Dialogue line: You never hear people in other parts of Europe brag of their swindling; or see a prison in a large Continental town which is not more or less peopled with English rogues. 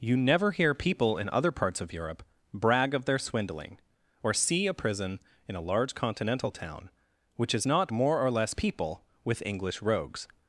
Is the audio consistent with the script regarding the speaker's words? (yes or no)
no